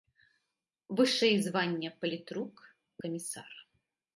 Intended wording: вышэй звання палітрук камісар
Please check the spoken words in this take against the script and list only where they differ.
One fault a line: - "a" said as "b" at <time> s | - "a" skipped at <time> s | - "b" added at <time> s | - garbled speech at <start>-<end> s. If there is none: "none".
none